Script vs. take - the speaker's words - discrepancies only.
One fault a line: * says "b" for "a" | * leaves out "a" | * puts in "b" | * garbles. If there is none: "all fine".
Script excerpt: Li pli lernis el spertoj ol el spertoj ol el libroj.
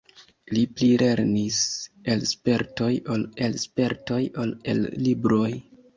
all fine